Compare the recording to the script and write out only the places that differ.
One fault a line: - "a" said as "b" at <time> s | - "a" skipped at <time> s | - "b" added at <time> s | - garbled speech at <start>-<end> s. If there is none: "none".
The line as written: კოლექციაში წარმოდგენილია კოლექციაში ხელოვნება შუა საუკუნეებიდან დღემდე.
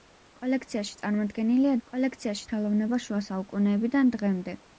none